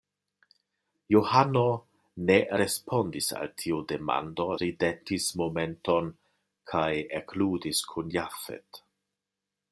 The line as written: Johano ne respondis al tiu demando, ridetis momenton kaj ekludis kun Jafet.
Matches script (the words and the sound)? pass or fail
pass